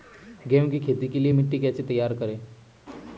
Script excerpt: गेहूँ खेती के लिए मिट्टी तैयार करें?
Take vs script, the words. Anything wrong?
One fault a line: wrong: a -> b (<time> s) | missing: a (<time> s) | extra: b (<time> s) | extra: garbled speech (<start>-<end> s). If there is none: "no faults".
extra: की (0.7 s)
extra: कैसे (1.6 s)